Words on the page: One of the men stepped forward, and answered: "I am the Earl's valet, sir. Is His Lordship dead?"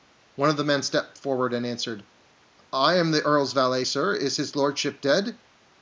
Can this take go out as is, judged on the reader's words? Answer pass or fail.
pass